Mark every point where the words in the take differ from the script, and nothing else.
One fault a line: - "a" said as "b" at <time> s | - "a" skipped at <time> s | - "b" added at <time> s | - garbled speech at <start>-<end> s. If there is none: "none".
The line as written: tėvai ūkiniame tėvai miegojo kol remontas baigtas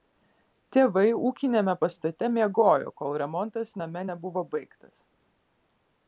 - "tėvai" said as "pastate" at 1.8 s
- "name nebuvo" added at 3.8 s